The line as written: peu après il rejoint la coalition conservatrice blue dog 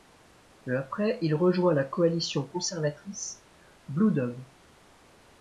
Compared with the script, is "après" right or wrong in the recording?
right